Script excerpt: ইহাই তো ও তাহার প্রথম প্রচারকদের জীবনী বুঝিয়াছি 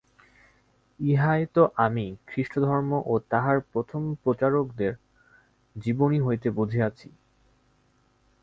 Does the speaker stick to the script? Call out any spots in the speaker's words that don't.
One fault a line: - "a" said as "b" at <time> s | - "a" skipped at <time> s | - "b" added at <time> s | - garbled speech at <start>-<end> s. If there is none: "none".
- "আমি খ্রীষ্টধর্ম" added at 1.8 s
- "হইতে" added at 6.2 s